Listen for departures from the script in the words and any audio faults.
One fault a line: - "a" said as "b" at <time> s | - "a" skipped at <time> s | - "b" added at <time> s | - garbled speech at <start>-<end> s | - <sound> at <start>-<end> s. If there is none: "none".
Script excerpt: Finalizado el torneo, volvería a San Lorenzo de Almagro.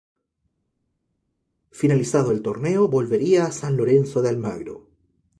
none